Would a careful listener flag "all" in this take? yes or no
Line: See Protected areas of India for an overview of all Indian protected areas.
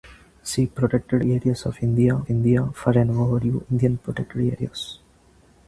yes